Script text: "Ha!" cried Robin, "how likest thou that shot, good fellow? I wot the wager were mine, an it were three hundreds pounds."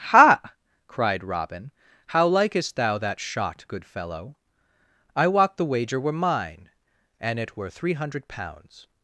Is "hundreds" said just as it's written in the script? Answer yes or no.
no